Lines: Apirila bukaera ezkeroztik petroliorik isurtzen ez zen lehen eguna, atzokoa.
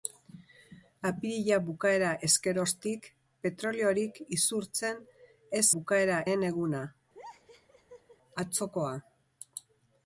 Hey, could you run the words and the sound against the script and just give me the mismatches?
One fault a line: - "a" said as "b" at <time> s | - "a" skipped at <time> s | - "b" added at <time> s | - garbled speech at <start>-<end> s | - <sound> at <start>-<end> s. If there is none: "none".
- "zen" said as "bukaera" at 5.7 s
- laugh at 7.1-8.2 s